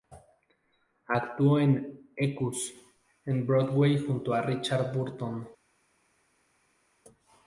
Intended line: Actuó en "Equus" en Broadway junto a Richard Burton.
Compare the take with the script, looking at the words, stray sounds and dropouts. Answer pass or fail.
pass